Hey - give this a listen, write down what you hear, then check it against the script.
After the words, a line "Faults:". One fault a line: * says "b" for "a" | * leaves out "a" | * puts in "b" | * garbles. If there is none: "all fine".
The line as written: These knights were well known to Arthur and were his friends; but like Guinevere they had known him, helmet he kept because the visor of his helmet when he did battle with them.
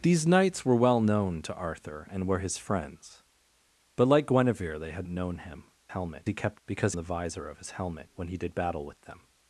These knights were well known to Arthur and were his friends; but like Guinevere they had known him, helmet he kept because the visor of his helmet when he did battle with them.
Faults:
all fine